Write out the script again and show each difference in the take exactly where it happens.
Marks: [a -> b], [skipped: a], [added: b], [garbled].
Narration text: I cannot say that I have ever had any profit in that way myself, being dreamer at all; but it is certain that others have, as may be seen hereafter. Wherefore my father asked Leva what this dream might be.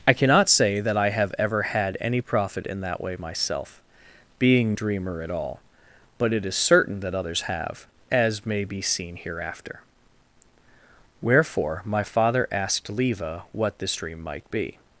I cannot say that I have ever had any profit in that way myself, being dreamer at all; but it is certain that others have, as may be seen hereafter. Wherefore my father asked Leva what this dream might be.